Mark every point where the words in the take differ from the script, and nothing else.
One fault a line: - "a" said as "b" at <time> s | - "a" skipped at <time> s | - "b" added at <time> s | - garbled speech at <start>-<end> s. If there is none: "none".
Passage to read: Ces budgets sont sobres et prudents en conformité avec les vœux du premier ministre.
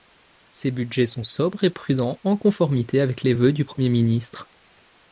none